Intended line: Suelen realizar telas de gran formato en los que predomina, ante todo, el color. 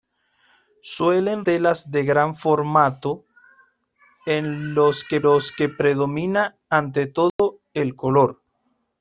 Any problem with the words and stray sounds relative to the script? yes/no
yes